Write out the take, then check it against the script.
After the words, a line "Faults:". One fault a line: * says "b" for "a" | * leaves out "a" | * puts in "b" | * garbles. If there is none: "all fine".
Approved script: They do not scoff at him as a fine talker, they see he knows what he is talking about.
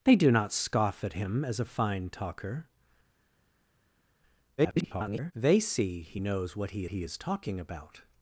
They do not scoff at him as a fine talker, [garbled] they see he knows what he he is talking about.
Faults:
* garbles
* puts in "he"